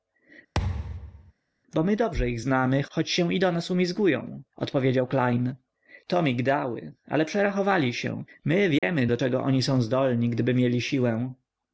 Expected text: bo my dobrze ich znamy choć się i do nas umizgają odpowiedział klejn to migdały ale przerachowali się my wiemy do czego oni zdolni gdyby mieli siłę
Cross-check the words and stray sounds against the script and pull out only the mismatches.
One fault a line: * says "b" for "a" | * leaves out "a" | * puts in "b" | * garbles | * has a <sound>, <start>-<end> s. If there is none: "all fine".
* has a thud, 0.5-1.3 s
* has a dropout, 8.8-8.8 s
* puts in "są"